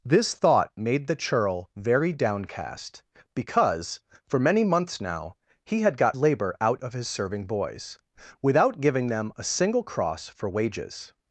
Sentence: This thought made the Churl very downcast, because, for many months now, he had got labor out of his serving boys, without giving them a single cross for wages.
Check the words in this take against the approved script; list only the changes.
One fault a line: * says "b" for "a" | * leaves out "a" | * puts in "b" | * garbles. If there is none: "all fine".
all fine